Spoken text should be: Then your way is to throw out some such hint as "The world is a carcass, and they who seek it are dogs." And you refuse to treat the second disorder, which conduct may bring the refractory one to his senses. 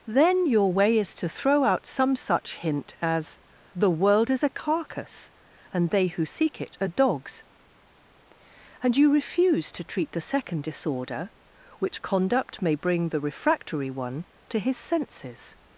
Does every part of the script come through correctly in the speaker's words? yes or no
yes